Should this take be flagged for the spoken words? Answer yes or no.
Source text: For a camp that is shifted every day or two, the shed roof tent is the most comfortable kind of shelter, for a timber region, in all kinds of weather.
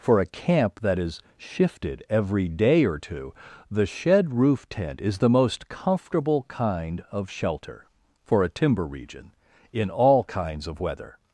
no